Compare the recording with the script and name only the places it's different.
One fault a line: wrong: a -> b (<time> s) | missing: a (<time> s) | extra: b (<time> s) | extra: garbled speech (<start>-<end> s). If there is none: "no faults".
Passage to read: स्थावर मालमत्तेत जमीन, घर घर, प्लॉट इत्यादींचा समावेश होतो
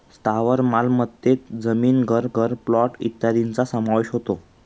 no faults